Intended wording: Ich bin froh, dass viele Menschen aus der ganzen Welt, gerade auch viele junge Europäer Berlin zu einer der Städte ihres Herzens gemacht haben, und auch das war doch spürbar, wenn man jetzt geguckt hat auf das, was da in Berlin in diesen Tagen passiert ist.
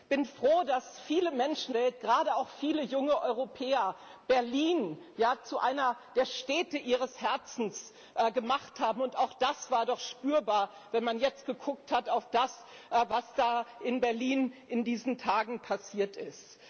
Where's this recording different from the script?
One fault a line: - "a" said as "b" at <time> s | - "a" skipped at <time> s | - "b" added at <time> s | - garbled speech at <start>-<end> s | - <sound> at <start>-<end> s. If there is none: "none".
- "aus der ganzen" skipped at 1.7 s